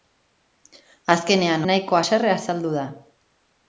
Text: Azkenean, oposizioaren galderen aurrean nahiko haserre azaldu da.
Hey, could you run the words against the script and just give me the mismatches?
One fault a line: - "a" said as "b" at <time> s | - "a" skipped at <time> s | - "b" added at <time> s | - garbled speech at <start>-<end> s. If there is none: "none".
- "oposizioaren galderen aurrean" skipped at 1.6 s